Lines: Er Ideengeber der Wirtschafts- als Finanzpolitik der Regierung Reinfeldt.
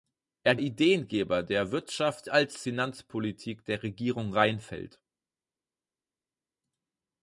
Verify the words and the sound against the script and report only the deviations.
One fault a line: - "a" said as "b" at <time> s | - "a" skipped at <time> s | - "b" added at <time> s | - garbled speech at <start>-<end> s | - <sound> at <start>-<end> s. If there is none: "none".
none